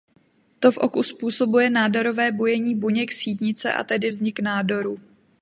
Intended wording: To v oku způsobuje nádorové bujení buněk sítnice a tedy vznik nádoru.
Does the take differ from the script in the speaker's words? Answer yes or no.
no